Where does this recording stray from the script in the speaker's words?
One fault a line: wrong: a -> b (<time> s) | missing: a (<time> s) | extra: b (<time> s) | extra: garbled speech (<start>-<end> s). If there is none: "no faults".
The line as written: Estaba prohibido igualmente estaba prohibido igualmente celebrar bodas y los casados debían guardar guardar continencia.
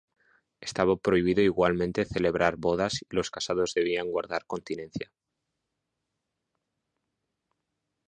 missing: estaba prohibido igualmente (2.0 s)
missing: guardar (4.4 s)